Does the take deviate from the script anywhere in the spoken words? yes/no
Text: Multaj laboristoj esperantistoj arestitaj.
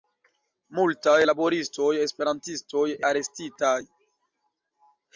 no